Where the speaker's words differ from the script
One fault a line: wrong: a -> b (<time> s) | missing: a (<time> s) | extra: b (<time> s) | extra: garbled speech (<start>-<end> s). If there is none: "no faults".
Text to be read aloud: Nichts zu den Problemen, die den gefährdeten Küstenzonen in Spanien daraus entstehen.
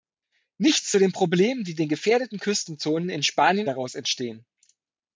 no faults